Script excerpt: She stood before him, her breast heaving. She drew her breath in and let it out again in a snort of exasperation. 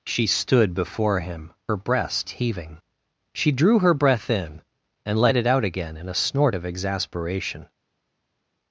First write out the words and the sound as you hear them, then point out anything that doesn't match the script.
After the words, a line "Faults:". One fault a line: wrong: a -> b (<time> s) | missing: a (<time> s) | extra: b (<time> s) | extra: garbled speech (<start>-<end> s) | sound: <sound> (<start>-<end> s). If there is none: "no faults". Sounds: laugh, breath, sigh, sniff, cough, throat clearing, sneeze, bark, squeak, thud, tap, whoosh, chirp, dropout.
She stood before him, her breast heaving. She drew her breath in and let it out again in a snort of exasperation.
Faults:
no faults